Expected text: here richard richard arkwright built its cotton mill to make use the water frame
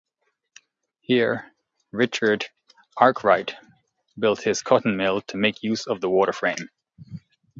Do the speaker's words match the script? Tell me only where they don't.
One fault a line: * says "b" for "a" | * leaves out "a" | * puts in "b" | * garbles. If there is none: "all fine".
* leaves out "richard"
* says "his" for "its"
* puts in "of"